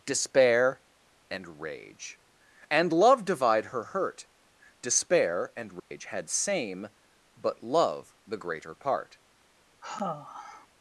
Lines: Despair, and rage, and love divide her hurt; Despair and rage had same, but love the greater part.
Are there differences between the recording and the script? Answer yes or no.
no